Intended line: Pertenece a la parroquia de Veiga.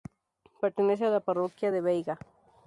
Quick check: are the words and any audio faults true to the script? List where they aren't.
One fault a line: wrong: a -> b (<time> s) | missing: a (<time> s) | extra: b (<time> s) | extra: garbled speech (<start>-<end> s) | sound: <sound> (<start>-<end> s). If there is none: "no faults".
no faults